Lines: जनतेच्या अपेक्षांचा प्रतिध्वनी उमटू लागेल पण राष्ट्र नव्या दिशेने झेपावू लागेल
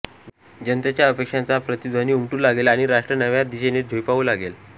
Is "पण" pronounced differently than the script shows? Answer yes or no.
yes